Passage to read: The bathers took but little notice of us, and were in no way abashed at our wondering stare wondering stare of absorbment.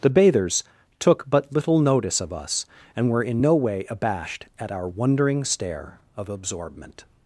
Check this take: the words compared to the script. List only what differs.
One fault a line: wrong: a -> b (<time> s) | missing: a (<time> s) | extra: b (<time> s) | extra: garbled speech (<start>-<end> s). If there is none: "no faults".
missing: wondering stare (6.0 s)